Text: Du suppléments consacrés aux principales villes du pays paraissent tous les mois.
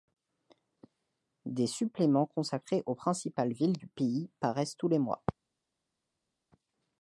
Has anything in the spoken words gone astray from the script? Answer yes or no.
yes